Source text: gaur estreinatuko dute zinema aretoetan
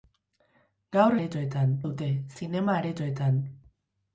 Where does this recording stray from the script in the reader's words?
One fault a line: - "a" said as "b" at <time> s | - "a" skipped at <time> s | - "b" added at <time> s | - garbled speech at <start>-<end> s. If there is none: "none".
- "estreinatuko" said as "aretoetan" at 1.2 s